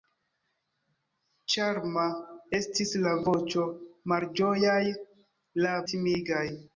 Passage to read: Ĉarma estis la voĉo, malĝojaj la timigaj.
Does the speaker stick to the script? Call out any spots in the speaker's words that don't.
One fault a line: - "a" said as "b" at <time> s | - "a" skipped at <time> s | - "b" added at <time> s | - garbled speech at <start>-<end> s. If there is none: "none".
none